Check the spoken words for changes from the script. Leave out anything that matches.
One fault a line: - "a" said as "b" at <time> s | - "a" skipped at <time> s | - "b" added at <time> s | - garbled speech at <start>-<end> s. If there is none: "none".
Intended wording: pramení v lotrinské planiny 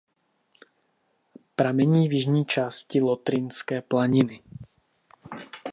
- "jižní části" added at 2.1 s